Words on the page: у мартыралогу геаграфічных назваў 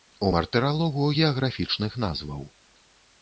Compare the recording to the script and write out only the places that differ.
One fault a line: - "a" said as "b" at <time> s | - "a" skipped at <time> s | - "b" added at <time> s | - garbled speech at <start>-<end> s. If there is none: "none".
none